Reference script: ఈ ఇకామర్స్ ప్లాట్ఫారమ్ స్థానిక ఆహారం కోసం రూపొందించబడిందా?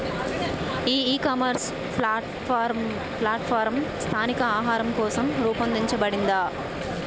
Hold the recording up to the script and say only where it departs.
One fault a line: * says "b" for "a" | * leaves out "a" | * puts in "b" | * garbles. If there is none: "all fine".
all fine